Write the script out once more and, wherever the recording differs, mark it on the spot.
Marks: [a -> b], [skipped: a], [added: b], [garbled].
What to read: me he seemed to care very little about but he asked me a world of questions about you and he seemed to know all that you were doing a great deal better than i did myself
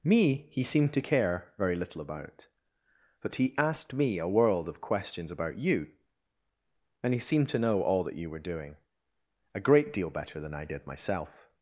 me he seemed to care very little about but he asked me a world of questions about you and he seemed to know all that you were doing a great deal better than i did myself